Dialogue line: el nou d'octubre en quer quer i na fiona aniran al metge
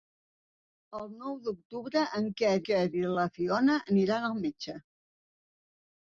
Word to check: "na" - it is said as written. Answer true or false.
true